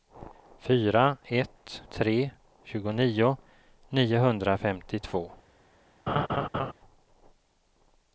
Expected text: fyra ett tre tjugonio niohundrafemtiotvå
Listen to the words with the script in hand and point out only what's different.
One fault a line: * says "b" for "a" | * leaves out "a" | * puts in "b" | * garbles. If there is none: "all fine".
all fine